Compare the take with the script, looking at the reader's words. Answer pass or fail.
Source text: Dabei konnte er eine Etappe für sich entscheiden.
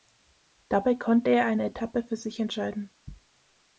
pass